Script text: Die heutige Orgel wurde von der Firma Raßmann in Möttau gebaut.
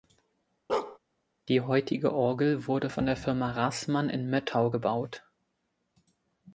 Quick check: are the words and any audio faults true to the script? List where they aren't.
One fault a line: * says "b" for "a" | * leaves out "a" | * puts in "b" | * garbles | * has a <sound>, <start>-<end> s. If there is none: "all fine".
* has a bark, 0.7-1.0 s